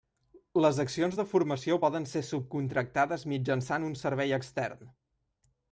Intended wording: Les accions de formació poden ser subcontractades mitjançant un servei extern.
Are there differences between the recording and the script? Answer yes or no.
no